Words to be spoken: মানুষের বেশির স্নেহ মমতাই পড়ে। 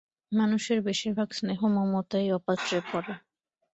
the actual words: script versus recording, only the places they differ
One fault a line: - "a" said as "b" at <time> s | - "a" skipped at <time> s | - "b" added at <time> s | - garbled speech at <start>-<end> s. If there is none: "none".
- "ভাগ" added at 1.1 s
- "অপাত্রে" added at 2.3 s